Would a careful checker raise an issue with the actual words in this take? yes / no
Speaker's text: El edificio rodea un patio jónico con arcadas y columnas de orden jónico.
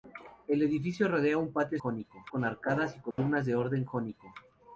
no